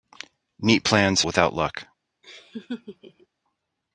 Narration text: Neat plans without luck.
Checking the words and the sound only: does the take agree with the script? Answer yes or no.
no